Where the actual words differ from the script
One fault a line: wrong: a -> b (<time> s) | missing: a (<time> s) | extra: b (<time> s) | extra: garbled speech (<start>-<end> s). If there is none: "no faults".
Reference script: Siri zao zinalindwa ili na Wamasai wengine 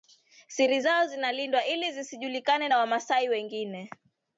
extra: zisijulikane (1.9 s)